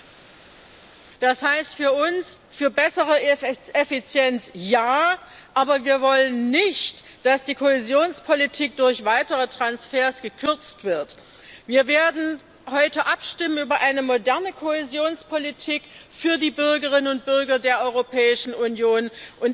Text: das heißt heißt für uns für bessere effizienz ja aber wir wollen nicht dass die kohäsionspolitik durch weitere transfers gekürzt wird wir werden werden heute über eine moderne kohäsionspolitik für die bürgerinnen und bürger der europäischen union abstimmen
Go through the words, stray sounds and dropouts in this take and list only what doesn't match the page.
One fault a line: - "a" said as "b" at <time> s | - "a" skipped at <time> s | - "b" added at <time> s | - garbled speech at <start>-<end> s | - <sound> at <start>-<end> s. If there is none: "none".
- "heißt" skipped at 1.7 s
- "werden" skipped at 12.4 s